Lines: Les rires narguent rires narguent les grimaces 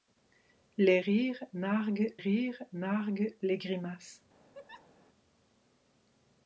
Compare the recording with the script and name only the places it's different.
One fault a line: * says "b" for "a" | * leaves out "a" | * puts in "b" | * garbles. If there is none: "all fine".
all fine